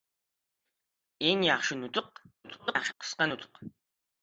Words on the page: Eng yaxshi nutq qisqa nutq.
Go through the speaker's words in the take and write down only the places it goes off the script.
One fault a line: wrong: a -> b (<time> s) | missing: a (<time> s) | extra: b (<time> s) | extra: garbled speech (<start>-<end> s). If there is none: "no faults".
extra: garbled speech (2.4-2.9 s)